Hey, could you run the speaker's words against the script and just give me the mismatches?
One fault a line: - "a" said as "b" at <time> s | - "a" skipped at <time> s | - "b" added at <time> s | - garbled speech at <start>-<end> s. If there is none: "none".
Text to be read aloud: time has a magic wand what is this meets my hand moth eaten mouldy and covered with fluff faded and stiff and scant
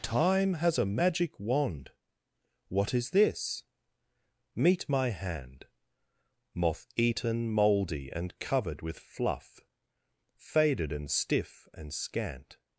- "meets" said as "meet" at 4.5 s